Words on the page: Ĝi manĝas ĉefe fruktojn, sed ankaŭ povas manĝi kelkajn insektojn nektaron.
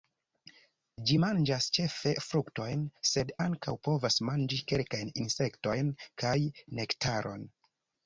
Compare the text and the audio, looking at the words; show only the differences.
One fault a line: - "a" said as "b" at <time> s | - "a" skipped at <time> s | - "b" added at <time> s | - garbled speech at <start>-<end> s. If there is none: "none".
- "kaj" added at 6.3 s